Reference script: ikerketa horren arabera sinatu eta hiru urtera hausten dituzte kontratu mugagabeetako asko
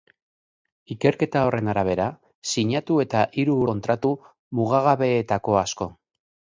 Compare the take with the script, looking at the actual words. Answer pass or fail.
fail